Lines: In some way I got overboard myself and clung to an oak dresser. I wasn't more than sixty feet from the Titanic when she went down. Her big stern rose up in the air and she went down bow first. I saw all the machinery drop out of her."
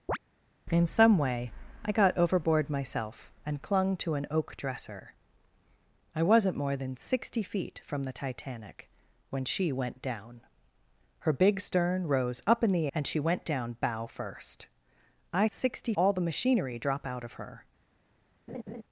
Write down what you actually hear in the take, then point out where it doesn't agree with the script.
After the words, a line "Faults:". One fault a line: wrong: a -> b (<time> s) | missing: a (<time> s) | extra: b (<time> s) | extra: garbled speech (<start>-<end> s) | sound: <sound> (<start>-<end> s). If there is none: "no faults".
In some way I got overboard myself and clung to an oak dresser. I wasn't more than sixty feet from the Titanic when she went down. Her big stern rose up in the and she went down bow first. I sixty all the machinery drop out of her."
Faults:
sound: chirp (0.1-0.2 s)
missing: air (12.9 s)
wrong: saw -> sixty (15.5 s)
sound: laugh (18.5-18.8 s)